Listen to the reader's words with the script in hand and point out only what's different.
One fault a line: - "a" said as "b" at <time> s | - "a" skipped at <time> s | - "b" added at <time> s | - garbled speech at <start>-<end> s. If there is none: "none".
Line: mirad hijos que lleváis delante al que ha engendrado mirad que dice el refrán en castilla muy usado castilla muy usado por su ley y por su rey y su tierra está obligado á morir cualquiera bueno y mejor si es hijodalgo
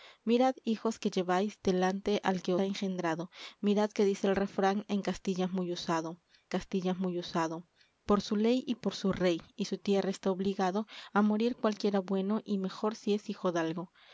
none